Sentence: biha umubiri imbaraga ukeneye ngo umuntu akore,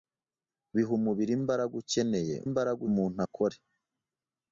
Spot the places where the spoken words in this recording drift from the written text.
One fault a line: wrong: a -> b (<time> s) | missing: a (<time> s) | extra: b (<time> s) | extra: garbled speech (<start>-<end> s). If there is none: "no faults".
wrong: ngo -> imbaraga (2.5 s)